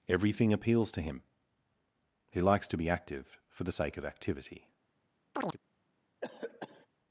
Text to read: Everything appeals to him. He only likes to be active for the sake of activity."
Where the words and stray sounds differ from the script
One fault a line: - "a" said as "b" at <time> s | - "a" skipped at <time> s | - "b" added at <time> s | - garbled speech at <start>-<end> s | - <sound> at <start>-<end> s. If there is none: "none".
- "only" skipped at 2.4 s
- chirp at 5.3-5.6 s
- cough at 6.2-6.9 s